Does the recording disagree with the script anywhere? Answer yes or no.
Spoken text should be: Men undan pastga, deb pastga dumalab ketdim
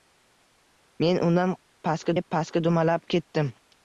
no